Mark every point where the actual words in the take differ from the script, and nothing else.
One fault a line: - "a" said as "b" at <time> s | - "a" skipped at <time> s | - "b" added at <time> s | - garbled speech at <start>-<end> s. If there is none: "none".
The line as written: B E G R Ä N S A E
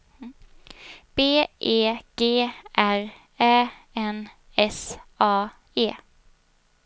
none